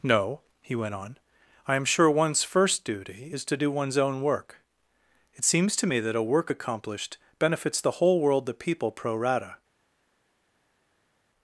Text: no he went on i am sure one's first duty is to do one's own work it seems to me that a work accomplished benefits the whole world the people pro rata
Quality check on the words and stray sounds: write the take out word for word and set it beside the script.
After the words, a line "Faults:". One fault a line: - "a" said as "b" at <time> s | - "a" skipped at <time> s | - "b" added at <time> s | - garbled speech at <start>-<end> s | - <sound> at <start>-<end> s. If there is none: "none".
no he went on i am sure one's first duty is to do one's own work it seems to me that a work accomplished benefits the whole world the people pro rata
Faults:
none